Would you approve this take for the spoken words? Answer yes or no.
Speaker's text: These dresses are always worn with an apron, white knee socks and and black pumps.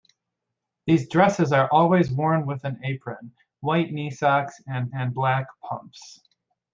yes